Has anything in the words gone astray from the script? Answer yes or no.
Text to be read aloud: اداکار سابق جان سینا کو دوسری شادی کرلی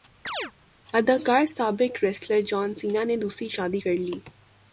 yes